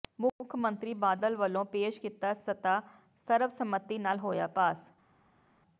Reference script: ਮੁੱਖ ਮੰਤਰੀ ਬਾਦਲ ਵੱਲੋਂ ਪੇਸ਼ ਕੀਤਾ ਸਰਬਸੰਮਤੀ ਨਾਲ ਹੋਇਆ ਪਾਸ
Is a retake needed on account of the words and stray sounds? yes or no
yes